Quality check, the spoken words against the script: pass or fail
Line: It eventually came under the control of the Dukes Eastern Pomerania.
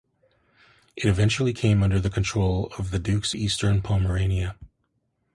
pass